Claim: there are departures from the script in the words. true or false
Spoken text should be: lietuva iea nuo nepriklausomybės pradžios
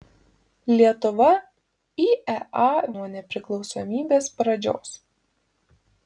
false